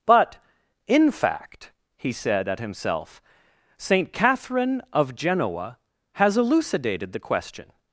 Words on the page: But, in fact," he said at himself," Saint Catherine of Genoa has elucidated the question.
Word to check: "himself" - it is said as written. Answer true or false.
true